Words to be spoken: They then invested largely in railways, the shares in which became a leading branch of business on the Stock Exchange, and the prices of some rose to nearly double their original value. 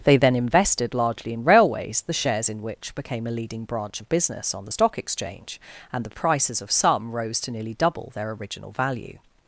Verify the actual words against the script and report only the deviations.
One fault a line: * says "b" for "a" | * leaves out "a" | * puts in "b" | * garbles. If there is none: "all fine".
all fine